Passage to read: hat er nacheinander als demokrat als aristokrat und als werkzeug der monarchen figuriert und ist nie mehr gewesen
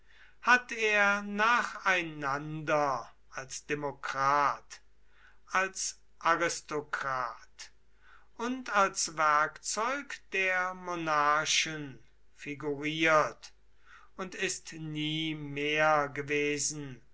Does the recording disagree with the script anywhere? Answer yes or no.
no